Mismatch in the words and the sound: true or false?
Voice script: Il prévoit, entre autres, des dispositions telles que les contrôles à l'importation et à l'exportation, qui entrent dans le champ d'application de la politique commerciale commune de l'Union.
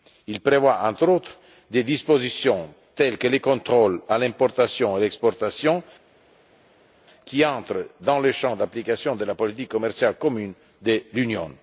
false